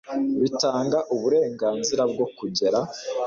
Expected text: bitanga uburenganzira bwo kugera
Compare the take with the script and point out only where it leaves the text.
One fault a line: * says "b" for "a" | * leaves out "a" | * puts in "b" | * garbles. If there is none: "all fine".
all fine